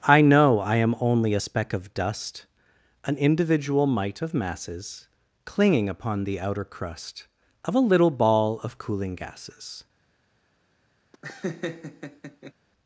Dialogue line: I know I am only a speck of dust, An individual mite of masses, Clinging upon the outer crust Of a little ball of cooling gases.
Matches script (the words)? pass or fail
pass